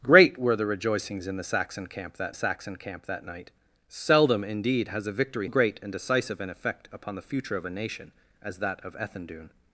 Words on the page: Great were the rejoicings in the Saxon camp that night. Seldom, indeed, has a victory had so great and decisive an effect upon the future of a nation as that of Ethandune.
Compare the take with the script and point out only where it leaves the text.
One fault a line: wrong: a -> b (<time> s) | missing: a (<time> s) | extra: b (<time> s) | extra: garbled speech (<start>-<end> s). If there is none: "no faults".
extra: Saxon camp that (2.3 s)
missing: had so (5.5 s)